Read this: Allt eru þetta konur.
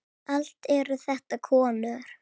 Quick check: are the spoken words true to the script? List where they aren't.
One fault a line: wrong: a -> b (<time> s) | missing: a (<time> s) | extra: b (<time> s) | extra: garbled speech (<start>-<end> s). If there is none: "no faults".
no faults